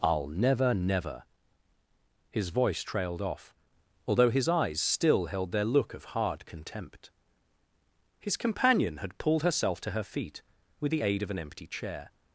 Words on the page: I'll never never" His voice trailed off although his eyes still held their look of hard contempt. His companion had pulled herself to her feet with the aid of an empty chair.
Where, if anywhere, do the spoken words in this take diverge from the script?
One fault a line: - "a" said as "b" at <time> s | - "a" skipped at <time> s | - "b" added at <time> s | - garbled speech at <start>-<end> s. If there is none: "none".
none